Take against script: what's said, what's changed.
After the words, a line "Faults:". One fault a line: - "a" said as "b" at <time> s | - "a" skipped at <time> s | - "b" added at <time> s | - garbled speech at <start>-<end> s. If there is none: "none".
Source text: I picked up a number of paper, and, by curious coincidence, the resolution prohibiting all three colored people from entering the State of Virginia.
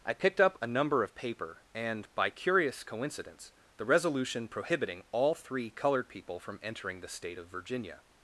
I picked up a number of paper, and, by curious coincidence, the resolution prohibiting all three colored people from entering the State of Virginia.
Faults:
none